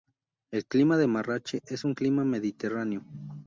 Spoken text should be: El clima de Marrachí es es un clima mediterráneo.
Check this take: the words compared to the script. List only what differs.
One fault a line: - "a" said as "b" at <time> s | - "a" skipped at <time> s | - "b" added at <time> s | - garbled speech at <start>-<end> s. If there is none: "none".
- "es" skipped at 1.9 s